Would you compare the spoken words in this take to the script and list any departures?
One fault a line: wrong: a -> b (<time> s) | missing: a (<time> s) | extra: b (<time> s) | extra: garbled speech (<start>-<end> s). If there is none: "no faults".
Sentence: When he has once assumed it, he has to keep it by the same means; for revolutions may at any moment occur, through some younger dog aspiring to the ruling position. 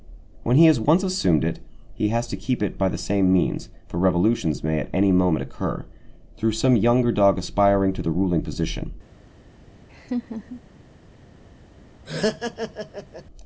no faults